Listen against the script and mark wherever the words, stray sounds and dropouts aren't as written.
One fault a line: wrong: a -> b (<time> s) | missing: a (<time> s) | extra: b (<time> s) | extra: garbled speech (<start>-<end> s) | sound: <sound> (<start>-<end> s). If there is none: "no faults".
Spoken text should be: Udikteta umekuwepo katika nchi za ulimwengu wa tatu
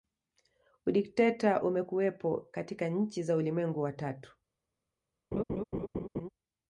sound: laugh (5.3-6.3 s)